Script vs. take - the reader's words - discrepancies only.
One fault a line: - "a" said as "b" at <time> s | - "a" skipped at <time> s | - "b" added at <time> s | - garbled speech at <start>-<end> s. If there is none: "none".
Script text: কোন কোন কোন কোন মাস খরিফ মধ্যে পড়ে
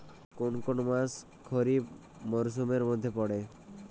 - "কোন কোন" skipped at 0.8 s
- "মরসুমের" added at 2.2 s